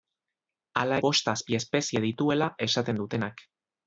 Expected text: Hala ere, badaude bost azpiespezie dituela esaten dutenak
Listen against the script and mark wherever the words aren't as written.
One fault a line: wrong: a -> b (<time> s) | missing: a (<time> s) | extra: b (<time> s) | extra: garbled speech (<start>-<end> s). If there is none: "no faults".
missing: ere badaude (1.0 s)